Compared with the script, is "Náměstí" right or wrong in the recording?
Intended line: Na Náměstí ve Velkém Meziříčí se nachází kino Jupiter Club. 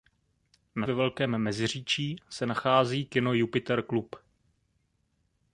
wrong